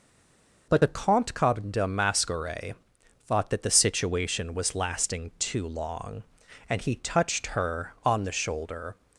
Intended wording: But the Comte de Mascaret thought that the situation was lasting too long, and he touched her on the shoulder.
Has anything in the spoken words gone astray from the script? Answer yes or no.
no